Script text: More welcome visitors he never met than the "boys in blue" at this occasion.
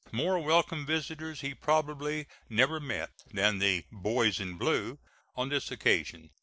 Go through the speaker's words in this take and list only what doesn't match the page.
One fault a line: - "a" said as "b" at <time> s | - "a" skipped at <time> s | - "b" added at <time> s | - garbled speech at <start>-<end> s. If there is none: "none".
- "probably" added at 1.5 s
- "at" said as "on" at 5.3 s